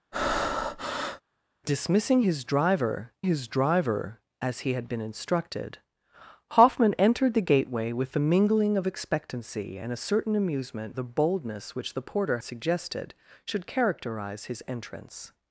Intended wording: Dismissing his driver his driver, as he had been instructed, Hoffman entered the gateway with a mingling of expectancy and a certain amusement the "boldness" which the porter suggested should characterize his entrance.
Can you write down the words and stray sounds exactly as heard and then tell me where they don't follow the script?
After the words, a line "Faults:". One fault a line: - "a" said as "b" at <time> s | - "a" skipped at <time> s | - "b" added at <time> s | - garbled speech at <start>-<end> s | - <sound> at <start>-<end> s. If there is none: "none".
Dismissing his driver his driver, as he had been instructed, Hoffman entered the gateway with a mingling of expectancy and a certain amusement the "boldness" which the porter suggested should characterize his entrance.
Faults:
- breath at 0.1-1.2 s